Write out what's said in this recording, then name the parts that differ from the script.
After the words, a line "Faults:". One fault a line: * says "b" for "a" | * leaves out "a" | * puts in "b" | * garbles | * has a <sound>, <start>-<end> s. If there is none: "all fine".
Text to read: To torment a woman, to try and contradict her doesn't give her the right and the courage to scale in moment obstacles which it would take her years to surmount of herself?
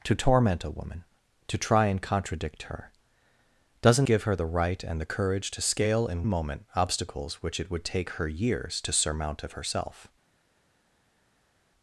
To torment a woman, to try and contradict her doesn't give her the right and the courage to scale in moment obstacles which it would take her years to surmount of herself?
Faults:
all fine